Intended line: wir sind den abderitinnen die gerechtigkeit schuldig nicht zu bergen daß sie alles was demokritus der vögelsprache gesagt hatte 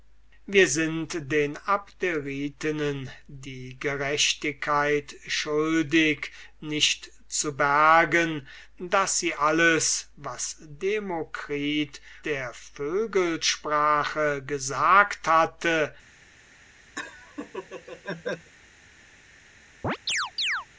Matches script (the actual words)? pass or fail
pass